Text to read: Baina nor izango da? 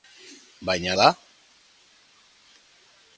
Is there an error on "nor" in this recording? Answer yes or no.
yes